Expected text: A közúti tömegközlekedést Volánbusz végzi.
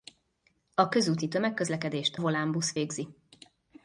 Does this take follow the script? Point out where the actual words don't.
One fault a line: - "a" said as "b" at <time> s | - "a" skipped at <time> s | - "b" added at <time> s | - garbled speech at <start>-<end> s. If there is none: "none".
none